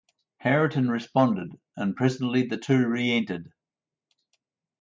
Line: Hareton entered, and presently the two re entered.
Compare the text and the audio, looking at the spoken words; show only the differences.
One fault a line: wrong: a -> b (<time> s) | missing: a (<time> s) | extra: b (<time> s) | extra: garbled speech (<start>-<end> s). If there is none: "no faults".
wrong: entered -> responded (0.9 s)